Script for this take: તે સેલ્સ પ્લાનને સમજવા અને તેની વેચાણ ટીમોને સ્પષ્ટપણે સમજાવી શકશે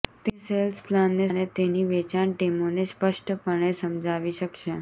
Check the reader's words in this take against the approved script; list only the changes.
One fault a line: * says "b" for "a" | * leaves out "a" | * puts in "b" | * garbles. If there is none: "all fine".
* leaves out "સમજવા"